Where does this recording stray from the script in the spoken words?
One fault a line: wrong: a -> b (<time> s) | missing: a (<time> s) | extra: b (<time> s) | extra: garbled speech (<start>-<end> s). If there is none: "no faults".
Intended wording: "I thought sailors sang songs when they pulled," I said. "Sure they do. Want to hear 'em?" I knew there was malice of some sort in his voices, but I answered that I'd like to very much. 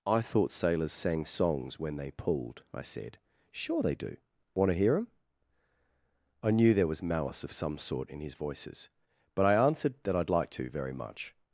no faults